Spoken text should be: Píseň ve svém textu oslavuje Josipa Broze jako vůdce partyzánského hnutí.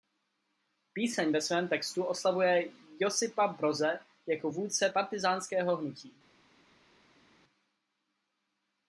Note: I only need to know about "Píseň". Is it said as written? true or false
true